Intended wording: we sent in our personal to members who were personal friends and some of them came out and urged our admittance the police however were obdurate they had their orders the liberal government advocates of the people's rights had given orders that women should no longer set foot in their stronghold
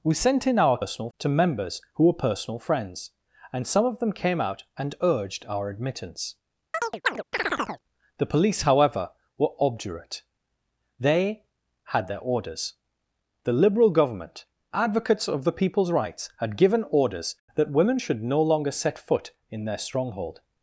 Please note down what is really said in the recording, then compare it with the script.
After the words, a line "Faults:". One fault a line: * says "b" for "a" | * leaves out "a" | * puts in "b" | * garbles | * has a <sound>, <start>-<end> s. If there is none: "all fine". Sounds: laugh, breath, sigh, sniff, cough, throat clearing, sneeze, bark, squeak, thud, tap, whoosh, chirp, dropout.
we sent in our personal to members who were personal friends and some of them came out and urged our admittance the police however were obdurate they had their orders the liberal government advocates of the people's rights had given orders that women should no longer set foot in their stronghold
Faults:
* has a chirp, 6.7-7.8 s